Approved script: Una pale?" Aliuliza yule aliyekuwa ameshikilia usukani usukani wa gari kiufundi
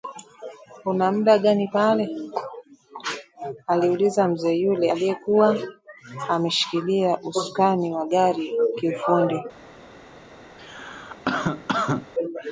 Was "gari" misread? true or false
false